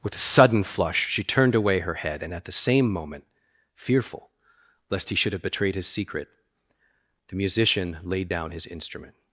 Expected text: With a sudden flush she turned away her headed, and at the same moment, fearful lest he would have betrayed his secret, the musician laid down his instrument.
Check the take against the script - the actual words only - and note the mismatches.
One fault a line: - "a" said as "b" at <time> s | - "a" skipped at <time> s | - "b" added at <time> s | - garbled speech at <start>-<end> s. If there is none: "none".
- "headed" said as "head" at 1.9 s
- "would" said as "should" at 5.2 s